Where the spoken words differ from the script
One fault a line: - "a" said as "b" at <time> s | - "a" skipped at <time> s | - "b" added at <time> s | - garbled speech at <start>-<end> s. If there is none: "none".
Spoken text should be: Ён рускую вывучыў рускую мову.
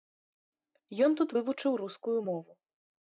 - "рускую" said as "тут" at 1.2 s